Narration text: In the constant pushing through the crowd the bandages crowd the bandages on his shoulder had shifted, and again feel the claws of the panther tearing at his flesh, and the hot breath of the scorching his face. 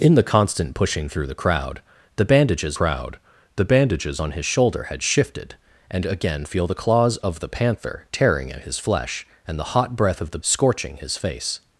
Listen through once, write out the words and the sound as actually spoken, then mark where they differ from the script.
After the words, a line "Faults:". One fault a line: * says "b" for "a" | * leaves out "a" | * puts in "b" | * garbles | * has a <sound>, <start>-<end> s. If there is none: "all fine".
In the constant pushing through the crowd the bandages crowd the bandages on his shoulder had shifted, and again feel the claws of the panther tearing at his flesh, and the hot breath of the scorching his face.
Faults:
all fine